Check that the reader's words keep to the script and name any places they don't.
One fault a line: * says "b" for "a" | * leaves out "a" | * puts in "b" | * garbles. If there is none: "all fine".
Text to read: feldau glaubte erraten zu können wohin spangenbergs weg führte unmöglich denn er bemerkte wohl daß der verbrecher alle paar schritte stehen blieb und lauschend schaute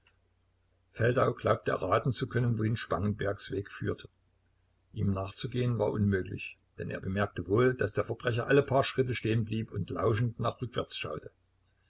* puts in "ihm nachzugehen war"
* puts in "nach rückwärts"